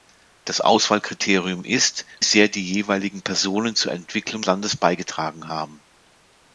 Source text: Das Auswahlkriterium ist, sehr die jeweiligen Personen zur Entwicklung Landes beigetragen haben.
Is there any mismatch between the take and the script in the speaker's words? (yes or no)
no